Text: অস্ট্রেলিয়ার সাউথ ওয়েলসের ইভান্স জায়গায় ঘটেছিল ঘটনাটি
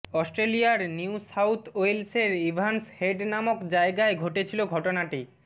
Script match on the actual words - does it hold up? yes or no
no